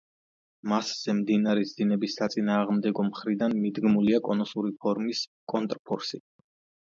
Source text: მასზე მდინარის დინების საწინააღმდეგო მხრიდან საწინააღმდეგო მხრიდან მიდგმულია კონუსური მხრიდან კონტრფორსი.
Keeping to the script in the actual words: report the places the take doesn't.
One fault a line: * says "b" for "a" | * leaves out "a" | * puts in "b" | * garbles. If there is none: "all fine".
* leaves out "საწინააღმდეგო მხრიდან"
* says "ფორმის" for "მხრიდან"